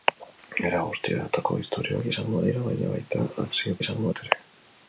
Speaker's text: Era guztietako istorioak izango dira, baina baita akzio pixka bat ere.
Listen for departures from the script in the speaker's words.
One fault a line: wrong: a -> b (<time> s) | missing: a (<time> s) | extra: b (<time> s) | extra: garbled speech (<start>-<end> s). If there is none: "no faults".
wrong: pixka -> izango (3.8 s)